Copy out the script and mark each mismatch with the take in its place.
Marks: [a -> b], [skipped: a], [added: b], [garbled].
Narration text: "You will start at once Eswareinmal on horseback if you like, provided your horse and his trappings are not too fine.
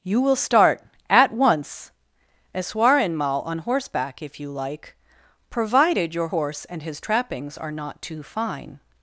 "You will start at once Eswareinmal on horseback if you like, provided your horse and his trappings are not too fine.